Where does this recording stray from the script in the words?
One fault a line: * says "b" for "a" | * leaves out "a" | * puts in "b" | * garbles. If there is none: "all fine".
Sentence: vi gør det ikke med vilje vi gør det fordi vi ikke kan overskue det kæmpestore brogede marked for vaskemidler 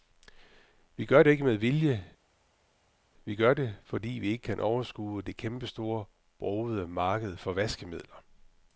all fine